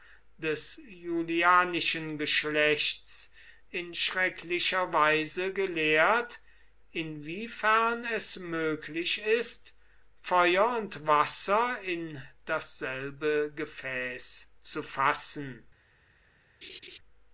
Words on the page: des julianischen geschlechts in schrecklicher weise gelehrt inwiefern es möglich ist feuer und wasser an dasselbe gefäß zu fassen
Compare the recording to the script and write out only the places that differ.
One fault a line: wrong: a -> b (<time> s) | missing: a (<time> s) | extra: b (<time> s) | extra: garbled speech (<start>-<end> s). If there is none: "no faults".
wrong: an -> in (11.8 s)